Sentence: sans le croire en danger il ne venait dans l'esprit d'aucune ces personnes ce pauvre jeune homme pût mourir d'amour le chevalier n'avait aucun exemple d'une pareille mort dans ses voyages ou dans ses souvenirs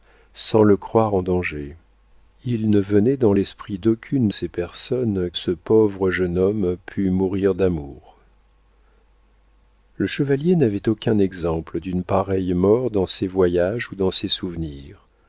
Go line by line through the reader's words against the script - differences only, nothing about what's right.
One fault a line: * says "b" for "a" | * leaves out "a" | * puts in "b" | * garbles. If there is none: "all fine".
all fine